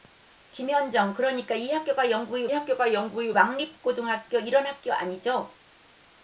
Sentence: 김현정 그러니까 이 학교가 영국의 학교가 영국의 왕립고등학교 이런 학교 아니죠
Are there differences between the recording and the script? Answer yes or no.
no